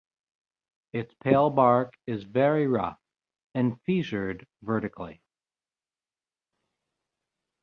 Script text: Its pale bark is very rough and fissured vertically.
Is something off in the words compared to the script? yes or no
no